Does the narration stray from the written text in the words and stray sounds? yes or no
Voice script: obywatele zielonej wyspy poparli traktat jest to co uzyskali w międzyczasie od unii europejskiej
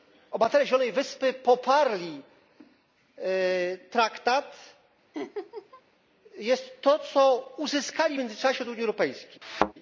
yes